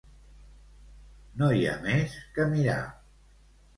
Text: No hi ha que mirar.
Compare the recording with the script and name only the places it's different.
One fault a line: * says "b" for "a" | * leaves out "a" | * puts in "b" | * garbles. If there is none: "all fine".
* puts in "més"